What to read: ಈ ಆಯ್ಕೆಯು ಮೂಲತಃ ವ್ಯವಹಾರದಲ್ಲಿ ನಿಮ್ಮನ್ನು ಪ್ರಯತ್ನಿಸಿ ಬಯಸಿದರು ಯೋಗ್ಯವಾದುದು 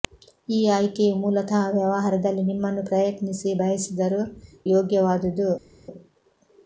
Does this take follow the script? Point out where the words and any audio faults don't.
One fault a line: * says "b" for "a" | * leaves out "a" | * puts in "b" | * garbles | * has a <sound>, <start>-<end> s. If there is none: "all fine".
all fine